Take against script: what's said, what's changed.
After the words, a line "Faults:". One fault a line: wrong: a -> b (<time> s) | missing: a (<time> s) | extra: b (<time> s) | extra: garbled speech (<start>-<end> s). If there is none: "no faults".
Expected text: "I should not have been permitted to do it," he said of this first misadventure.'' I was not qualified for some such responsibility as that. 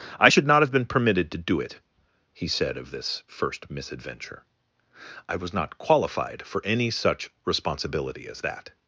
"I should not have been permitted to do it," he said of this first misadventure.'' I was not qualified for any such responsibility as that.
Faults:
wrong: some -> any (6.6 s)